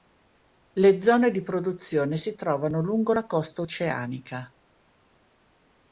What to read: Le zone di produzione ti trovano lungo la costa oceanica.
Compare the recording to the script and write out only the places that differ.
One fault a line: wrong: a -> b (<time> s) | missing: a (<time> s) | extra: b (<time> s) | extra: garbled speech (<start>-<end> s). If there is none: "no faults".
wrong: ti -> si (2.2 s)